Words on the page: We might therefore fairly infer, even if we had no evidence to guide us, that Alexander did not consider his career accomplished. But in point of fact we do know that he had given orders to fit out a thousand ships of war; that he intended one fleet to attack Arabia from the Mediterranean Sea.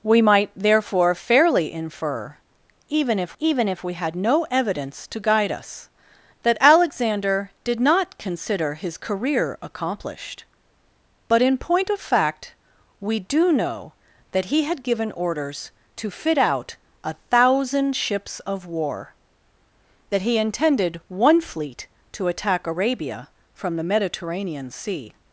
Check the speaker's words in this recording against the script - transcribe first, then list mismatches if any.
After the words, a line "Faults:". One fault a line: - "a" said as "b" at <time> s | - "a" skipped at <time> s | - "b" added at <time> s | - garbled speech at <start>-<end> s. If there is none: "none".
We might therefore fairly infer, even if even if we had no evidence to guide us, that Alexander did not consider his career accomplished. But in point of fact we do know that he had given orders to fit out a thousand ships of war; that he intended one fleet to attack Arabia from the Mediterranean Sea.
Faults:
- "even if" added at 3.4 s